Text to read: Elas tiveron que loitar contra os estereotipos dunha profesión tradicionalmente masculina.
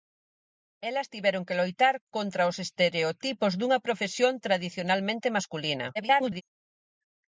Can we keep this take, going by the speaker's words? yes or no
no